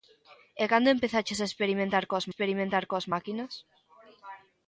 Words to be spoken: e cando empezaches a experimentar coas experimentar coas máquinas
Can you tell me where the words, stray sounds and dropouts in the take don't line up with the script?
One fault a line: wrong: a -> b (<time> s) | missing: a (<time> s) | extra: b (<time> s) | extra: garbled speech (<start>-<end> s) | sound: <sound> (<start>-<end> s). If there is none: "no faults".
no faults